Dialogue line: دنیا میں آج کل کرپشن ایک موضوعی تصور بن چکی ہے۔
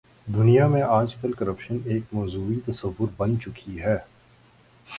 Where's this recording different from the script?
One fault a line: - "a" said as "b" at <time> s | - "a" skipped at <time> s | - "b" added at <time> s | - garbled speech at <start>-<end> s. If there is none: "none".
none